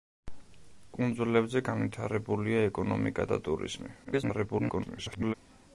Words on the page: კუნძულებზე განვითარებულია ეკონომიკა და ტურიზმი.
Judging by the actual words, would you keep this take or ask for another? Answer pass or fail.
fail